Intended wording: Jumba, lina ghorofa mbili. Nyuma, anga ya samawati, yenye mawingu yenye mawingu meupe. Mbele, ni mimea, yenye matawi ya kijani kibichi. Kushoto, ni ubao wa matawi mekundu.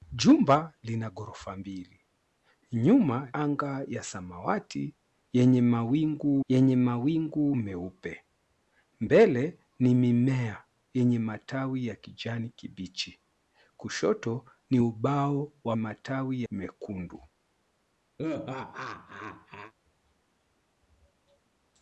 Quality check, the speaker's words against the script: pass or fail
pass